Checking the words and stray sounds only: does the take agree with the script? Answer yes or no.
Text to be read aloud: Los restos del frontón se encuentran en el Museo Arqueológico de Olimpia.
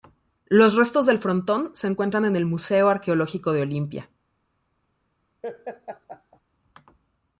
no